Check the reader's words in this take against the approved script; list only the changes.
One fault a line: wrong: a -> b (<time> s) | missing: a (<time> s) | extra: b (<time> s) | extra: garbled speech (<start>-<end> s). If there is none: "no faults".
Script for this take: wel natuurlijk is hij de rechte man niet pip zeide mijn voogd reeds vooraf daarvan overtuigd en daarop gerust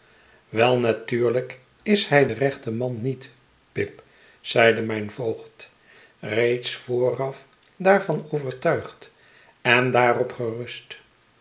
no faults